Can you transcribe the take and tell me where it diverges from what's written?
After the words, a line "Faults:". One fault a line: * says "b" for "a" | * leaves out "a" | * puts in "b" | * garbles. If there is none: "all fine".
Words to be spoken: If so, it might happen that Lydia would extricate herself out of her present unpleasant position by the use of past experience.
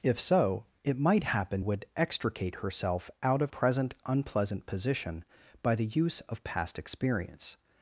If so, it might happen would extricate herself out of present unpleasant position by the use of past experience.
Faults:
* leaves out "that Lydia"
* leaves out "her"